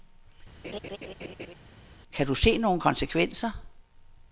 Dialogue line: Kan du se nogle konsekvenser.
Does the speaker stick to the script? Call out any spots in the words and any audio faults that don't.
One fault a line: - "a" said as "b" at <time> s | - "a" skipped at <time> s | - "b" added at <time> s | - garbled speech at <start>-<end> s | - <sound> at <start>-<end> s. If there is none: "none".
- laugh at 0.6-1.5 s